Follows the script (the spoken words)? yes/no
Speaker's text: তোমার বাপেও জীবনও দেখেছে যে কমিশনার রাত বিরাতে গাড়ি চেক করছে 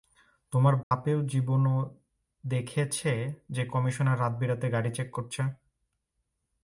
yes